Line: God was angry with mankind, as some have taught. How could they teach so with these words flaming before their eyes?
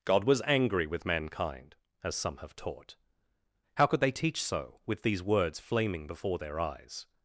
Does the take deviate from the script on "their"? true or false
false